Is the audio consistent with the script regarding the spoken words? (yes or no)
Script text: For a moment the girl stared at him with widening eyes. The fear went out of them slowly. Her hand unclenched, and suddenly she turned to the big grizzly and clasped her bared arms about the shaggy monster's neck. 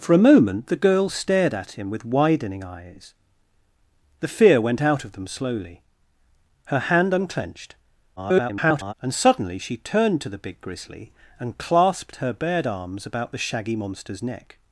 no